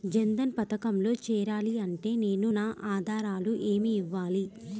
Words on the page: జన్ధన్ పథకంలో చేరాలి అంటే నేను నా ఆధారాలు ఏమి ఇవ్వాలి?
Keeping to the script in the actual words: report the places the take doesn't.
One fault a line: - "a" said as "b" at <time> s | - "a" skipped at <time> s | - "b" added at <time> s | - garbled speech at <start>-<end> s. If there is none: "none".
none